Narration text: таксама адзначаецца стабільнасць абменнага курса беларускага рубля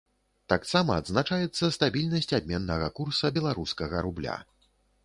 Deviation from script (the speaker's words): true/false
false